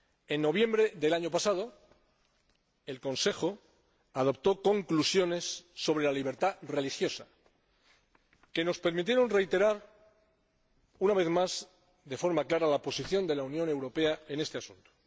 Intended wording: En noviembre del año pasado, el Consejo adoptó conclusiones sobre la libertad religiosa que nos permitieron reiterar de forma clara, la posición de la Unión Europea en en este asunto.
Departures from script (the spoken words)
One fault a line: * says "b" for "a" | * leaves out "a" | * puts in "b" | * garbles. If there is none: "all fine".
* puts in "una vez más"
* leaves out "en"